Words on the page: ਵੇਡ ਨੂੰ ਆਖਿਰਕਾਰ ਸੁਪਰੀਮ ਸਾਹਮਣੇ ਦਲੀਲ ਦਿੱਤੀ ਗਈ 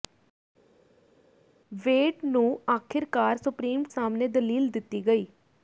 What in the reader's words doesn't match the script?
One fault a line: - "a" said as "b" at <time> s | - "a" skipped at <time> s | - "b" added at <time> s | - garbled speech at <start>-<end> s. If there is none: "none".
none